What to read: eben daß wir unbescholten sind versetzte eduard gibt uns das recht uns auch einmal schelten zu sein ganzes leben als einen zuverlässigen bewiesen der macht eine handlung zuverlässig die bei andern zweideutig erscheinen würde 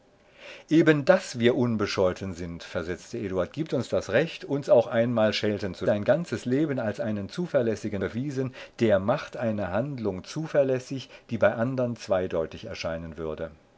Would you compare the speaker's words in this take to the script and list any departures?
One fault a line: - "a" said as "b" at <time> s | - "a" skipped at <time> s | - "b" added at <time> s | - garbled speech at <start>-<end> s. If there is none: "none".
none